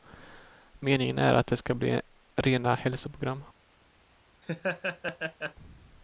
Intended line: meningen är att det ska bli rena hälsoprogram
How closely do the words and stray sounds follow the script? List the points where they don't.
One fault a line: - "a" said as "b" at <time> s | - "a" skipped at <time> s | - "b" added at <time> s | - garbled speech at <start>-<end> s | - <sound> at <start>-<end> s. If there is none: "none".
- laugh at 4.4-5.5 s